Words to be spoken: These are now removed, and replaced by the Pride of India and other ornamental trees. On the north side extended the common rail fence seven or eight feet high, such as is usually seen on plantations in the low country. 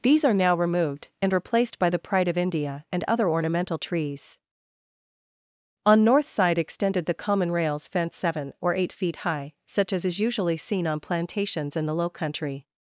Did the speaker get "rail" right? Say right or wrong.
wrong